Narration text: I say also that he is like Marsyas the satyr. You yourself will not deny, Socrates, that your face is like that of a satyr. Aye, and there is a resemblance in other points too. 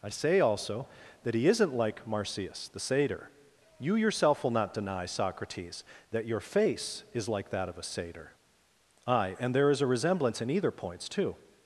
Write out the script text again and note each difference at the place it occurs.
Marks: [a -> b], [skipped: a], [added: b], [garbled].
I say also that he [is -> isn't] like Marsyas the satyr. You yourself will not deny, Socrates, that your face is like that of a satyr. Aye, and there is a resemblance in [other -> either] points too.